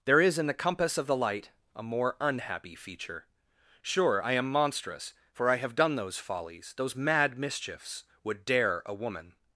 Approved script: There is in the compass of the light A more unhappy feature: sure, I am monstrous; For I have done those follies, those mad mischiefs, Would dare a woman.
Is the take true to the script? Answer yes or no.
yes